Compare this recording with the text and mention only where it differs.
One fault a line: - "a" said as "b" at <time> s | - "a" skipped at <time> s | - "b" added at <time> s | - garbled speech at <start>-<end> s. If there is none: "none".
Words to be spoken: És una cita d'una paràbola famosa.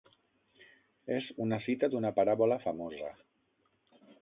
none